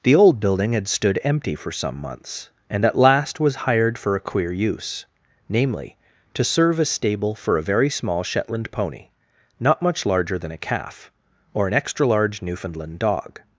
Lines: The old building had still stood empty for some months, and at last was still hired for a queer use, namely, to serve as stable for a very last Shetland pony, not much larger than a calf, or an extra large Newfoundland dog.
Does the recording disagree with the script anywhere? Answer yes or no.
yes